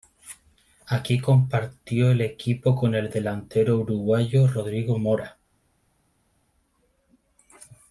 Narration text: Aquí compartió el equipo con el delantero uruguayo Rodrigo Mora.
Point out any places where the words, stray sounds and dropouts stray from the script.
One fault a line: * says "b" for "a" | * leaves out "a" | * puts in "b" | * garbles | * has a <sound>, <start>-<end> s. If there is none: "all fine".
all fine